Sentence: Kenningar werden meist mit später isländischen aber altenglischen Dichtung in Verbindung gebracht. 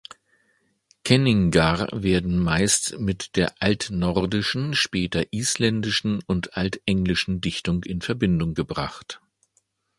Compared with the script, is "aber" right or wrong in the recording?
wrong